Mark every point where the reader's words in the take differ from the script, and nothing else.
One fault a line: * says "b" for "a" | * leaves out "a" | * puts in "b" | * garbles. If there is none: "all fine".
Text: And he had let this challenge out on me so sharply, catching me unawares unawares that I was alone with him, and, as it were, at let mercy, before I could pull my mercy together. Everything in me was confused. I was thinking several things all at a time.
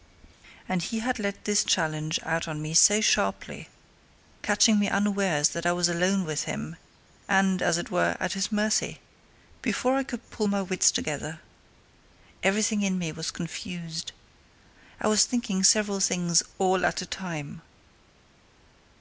* leaves out "unawares"
* says "his" for "let"
* says "wits" for "mercy"